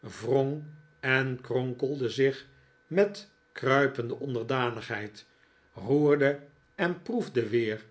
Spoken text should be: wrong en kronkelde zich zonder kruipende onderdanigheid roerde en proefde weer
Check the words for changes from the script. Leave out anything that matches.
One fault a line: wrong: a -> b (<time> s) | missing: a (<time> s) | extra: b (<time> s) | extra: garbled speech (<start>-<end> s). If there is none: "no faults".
wrong: zonder -> met (2.9 s)